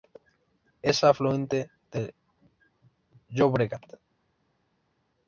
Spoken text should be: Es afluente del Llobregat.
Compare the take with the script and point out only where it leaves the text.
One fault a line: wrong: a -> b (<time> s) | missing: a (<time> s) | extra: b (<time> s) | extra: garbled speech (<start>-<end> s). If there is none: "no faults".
no faults